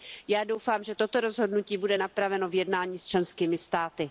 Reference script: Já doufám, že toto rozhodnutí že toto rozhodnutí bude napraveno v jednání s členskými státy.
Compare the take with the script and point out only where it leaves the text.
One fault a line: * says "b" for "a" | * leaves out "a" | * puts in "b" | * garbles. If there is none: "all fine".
* leaves out "že toto rozhodnutí"